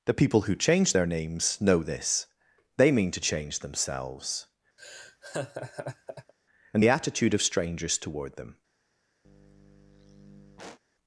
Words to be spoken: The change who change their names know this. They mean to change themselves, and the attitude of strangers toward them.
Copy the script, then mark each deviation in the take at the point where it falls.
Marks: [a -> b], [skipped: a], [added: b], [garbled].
The [change -> people] who change their names know this. They mean to change themselves, and the attitude of strangers toward them.